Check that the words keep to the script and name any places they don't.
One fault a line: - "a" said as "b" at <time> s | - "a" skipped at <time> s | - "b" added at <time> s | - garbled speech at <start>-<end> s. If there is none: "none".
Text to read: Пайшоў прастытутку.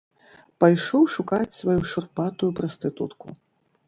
- "шукаць сваю шурпатую" added at 1.1 s